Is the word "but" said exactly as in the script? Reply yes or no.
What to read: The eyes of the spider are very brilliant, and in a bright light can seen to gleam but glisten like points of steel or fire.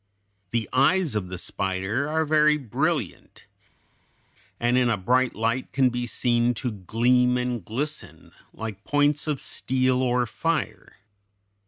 no